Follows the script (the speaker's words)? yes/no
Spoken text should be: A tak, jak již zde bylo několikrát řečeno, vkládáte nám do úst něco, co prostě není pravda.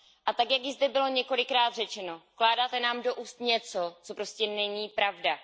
yes